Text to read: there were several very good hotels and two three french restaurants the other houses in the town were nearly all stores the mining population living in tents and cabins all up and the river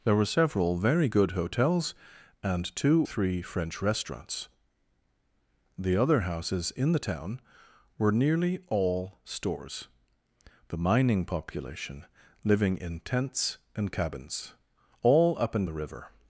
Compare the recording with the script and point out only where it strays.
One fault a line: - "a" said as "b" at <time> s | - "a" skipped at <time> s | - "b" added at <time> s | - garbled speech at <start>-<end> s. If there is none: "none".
none